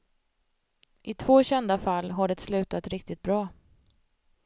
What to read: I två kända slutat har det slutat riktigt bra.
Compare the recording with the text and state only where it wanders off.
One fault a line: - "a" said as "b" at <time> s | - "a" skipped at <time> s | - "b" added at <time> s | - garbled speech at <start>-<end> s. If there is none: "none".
- "slutat" said as "fall" at 1.7 s